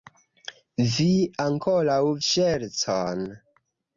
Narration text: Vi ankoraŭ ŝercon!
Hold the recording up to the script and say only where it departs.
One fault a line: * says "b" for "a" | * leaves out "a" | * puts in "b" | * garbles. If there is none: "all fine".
all fine